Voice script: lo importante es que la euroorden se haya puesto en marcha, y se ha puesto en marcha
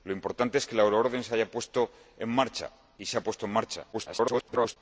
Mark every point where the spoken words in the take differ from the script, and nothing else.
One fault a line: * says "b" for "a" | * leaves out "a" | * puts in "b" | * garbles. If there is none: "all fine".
* garbles